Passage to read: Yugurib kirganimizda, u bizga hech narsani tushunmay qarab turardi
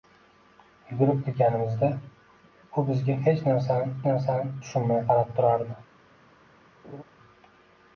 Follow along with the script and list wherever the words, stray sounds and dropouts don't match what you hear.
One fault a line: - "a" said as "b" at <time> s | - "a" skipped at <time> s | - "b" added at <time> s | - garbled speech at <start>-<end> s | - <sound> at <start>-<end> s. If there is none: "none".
- "narsani" added at 4.1 s
- laugh at 6.8-7.0 s